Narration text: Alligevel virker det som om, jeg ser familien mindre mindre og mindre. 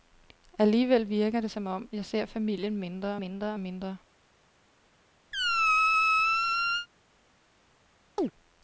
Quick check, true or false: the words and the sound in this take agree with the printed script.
false